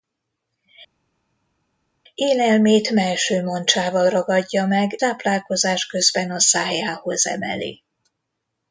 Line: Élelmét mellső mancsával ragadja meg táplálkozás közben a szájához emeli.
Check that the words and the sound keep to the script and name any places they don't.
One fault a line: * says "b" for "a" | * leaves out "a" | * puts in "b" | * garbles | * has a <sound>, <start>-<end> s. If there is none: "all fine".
all fine